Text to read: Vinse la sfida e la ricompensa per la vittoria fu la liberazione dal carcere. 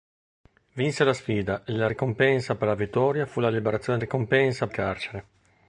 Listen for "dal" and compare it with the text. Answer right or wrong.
wrong